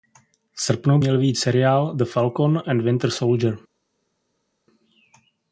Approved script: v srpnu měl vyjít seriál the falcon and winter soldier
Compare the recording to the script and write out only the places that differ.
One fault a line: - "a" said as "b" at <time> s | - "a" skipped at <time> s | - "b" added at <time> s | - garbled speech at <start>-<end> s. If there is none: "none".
none